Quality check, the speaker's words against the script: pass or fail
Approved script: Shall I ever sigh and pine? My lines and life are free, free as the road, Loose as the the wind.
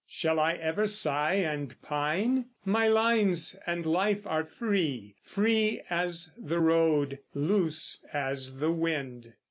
fail